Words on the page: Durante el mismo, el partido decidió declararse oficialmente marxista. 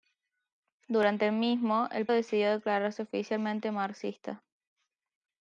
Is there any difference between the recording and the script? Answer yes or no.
yes